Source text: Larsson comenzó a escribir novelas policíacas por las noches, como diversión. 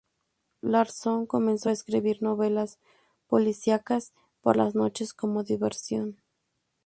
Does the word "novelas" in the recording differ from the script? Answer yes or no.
no